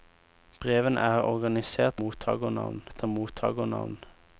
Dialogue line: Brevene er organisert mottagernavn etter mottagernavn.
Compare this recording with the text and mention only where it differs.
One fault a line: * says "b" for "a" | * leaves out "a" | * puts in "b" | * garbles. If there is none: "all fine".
all fine